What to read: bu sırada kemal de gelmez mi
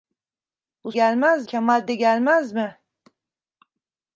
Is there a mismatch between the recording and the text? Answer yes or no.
yes